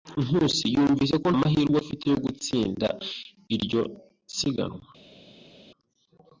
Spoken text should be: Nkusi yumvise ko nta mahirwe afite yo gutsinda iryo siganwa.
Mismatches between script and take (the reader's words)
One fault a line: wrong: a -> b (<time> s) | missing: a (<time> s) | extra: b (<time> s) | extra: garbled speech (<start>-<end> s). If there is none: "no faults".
missing: nta (1.3 s)